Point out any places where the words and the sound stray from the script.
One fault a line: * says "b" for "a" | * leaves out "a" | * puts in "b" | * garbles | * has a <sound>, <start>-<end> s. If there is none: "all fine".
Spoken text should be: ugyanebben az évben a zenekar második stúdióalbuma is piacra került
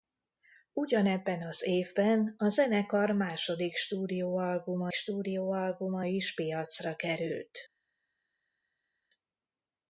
* puts in "stúdióalbuma"